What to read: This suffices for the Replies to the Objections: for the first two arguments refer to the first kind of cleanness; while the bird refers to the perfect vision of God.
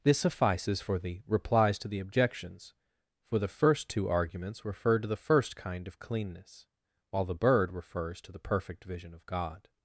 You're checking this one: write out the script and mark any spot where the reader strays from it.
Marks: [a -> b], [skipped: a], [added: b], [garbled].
This suffices for the Replies to the Objections: for the first two arguments refer to the first kind of cleanness; while the bird refers to the perfect vision of God.